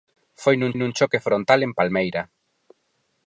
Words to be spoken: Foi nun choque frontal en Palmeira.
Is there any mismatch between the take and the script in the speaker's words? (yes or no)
yes